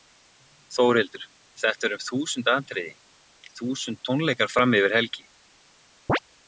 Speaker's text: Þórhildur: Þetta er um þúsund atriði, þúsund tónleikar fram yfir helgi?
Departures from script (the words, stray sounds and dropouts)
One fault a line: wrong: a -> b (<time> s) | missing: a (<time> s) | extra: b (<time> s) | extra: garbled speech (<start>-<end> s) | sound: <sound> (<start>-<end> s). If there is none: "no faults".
sound: chirp (6.1-6.2 s)